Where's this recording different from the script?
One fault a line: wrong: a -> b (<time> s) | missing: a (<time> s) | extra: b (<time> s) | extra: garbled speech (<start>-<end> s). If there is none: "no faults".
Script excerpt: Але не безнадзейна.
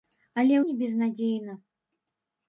no faults